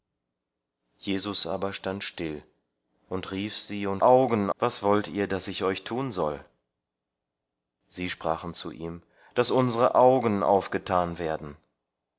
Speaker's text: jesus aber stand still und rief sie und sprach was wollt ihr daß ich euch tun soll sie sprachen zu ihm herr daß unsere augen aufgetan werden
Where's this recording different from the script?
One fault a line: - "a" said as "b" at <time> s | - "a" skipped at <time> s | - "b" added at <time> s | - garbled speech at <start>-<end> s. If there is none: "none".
- "sprach" said as "augen" at 4.0 s
- "herr" skipped at 9.0 s